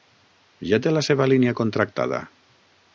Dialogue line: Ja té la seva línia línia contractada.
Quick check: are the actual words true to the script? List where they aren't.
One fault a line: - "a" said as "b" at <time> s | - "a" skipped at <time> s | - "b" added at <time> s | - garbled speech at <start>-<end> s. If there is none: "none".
- "línia" skipped at 1.6 s